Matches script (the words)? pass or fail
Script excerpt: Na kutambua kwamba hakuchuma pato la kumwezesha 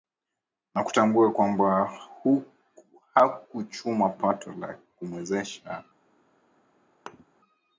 pass